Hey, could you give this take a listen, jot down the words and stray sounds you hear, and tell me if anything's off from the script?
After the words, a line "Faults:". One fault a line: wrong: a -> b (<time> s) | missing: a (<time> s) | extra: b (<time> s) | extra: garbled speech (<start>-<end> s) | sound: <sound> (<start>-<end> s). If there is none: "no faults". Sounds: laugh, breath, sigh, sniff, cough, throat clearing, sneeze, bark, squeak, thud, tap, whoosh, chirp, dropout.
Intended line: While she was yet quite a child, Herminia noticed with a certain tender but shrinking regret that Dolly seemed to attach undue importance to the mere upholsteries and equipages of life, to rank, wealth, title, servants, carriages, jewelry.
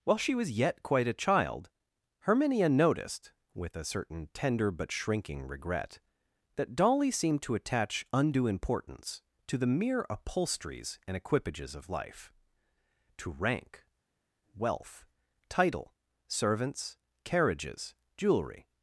While she was yet quite a child, Herminia noticed with a certain tender but shrinking regret that Dolly seemed to attach undue importance to the mere upholsteries and equipages of life, to rank, wealth, title, servants, carriages, jewelry.
Faults:
no faults